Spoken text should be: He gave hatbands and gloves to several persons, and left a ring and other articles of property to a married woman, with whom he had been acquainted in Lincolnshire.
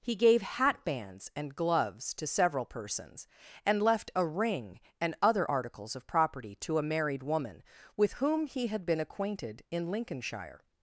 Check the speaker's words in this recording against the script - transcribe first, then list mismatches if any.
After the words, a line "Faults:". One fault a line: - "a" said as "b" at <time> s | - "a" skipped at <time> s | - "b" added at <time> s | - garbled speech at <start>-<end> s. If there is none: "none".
He gave hatbands and gloves to several persons, and left a ring and other articles of property to a married woman, with whom he had been acquainted in Lincolnshire.
Faults:
none